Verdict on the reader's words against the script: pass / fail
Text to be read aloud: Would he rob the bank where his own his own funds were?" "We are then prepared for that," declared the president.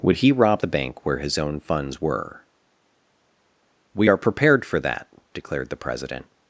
fail